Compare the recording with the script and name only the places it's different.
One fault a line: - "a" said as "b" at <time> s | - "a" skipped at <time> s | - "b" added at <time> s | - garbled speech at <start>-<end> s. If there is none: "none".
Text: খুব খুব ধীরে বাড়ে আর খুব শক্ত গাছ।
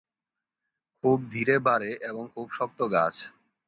- "খুব" skipped at 1.2 s
- "আর" said as "এবং" at 2.0 s